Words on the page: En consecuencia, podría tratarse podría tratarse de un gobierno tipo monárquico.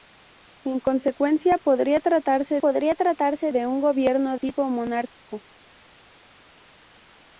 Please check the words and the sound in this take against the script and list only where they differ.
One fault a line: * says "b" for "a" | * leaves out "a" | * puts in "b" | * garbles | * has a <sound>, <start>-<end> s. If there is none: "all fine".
all fine